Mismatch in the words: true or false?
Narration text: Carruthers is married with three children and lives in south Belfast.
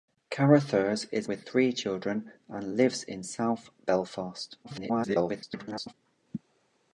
true